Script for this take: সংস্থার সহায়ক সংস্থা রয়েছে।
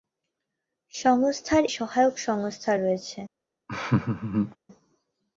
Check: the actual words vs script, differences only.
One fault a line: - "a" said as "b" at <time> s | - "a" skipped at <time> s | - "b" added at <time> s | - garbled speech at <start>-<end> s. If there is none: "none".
none